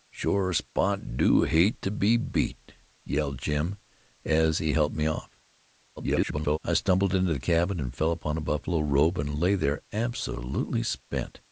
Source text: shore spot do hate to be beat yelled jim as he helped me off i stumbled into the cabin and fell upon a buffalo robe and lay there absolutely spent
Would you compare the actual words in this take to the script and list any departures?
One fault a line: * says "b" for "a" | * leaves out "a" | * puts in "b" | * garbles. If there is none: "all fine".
* garbles